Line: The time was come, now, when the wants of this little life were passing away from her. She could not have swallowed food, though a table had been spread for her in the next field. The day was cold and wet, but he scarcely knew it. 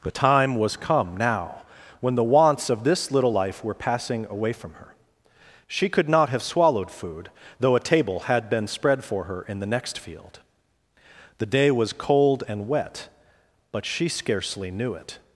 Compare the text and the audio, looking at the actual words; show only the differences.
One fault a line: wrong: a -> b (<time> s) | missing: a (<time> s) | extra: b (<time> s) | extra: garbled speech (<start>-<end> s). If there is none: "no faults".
wrong: he -> she (13.8 s)